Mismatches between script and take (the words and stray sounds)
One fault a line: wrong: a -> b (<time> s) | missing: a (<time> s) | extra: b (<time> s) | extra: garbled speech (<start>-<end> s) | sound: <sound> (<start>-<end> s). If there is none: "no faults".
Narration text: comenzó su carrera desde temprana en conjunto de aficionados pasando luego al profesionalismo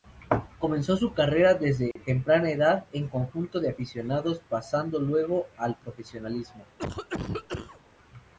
sound: dropout (1.9-2.0 s)
extra: edad (2.5 s)
sound: cough (6.8-7.8 s)